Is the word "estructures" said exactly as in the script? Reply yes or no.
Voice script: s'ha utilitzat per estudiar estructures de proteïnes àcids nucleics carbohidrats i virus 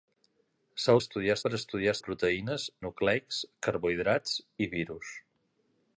no